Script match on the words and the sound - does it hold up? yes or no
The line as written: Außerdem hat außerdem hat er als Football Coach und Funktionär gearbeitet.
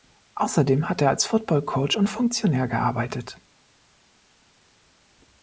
no